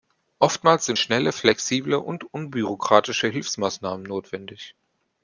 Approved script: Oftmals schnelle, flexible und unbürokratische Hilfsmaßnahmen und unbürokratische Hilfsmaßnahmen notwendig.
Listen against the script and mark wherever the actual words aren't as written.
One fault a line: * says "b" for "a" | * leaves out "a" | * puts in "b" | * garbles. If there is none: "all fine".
* puts in "sind"
* leaves out "und unbürokratische Hilfsmaßnahmen"